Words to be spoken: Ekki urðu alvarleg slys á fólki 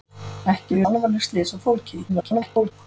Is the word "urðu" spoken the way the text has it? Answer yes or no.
no